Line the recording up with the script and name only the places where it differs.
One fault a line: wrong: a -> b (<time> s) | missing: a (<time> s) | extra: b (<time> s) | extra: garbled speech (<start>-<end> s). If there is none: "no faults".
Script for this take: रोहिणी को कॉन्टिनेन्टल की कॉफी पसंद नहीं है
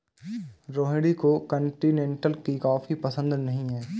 no faults